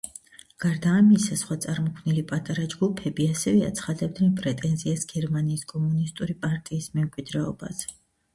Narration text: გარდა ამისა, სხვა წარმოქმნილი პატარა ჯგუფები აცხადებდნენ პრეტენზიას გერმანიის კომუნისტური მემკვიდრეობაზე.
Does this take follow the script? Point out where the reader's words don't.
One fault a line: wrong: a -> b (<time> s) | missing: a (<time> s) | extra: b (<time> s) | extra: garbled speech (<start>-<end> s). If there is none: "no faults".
extra: ასევე (3.3 s)
extra: პარტიის (6.5 s)